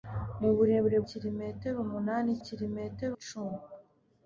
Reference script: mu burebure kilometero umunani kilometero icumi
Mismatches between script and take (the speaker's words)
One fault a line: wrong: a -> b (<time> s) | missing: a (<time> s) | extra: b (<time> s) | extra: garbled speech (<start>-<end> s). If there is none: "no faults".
no faults